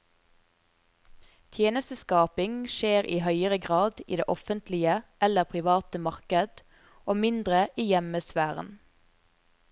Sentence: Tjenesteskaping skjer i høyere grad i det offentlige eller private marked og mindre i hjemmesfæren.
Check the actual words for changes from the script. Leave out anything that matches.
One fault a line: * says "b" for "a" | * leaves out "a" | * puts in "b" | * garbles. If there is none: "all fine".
all fine